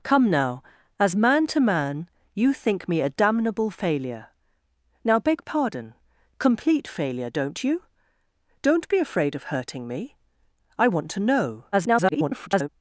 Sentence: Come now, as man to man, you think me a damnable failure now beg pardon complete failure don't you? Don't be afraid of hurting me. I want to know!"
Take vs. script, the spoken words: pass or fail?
fail